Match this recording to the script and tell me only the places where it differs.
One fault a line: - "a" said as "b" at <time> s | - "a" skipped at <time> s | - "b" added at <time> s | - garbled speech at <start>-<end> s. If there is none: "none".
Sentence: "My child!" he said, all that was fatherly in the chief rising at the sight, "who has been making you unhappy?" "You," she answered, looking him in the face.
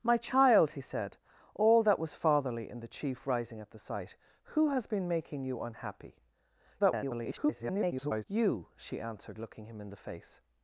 - garbled speech at 6.8-8.2 s